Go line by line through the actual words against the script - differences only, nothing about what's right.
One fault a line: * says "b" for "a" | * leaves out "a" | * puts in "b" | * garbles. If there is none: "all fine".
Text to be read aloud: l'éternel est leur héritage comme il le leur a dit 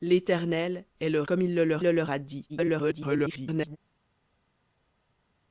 * leaves out "héritage"
* puts in "le leur"
* garbles